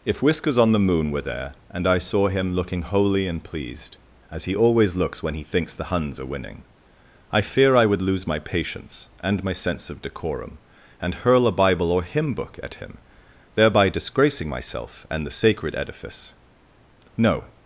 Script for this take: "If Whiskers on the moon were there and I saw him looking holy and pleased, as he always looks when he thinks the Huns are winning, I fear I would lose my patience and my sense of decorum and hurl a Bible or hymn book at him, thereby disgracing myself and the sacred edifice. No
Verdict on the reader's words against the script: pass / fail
pass